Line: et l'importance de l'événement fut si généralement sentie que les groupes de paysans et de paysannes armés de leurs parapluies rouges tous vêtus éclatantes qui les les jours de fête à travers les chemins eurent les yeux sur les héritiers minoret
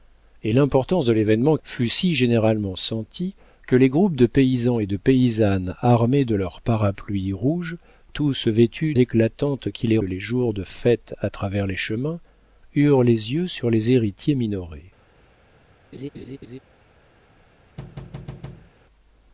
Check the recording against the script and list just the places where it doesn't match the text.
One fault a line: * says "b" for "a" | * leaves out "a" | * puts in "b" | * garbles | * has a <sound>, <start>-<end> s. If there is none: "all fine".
* has a laugh, 15.9-16.6 s
* has a thud, 17.8-18.7 s